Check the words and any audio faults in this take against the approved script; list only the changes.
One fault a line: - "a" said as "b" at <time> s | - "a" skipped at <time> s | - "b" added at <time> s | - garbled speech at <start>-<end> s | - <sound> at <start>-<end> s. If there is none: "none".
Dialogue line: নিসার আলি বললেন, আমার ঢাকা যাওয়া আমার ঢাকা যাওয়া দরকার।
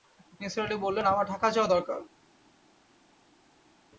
- "আমার ঢাকা যাওয়া" skipped at 1.7 s